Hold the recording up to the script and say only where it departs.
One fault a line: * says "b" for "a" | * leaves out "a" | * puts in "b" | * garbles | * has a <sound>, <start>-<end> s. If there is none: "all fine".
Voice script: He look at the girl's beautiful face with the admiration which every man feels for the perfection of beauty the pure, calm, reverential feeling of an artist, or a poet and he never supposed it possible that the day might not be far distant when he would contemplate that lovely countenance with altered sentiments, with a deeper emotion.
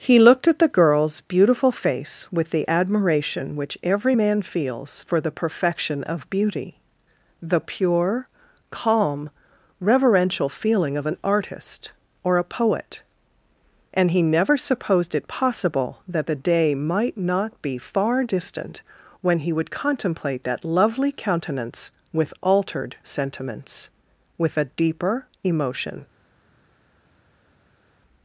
* says "looked" for "look"